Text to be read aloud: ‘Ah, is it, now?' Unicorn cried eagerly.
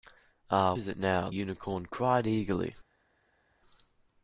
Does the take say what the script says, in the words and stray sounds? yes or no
yes